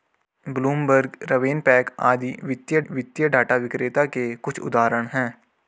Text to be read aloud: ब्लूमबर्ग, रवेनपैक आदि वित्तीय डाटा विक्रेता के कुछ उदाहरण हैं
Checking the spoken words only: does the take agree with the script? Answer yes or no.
no